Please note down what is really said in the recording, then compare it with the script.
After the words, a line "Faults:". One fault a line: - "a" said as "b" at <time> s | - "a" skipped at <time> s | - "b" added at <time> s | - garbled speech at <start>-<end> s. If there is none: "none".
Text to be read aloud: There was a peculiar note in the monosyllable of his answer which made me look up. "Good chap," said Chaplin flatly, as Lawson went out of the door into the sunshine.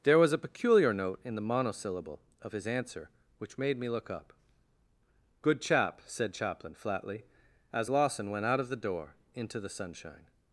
There was a peculiar note in the monosyllable of his answer which made me look up. "Good chap," said Chaplin flatly, as Lawson went out of the door into the sunshine.
Faults:
none